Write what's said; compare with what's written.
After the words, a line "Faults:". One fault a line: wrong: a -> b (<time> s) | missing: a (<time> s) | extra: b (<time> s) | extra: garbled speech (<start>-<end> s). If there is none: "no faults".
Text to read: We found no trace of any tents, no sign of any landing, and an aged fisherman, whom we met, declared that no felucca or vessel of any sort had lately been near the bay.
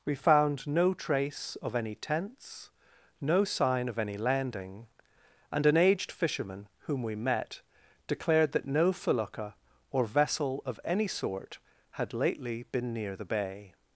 We found no trace of any tents, no sign of any landing, and an aged fisherman, whom we met, declared that no felucca or vessel of any sort had lately been near the bay.
Faults:
no faults